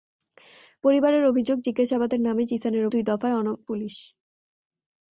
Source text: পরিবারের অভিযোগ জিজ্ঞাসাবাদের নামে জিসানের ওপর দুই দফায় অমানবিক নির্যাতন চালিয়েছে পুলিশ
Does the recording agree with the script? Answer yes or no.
no